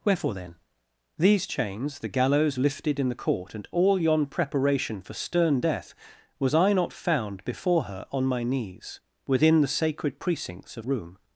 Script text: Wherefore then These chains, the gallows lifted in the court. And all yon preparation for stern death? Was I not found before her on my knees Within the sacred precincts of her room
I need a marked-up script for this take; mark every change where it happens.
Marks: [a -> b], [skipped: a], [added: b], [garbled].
Wherefore then These chains, the gallows lifted in the court. And all yon preparation for stern death? Was I not found before her on my knees Within the sacred precincts of [skipped: her] room